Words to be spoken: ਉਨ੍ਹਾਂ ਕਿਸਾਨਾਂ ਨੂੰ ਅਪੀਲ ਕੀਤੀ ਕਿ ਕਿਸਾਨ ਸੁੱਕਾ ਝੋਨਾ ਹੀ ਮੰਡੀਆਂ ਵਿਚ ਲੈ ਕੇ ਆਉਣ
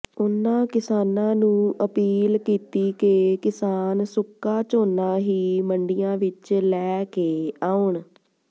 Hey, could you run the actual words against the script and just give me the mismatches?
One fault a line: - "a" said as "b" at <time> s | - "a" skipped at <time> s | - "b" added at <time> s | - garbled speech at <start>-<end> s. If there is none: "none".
none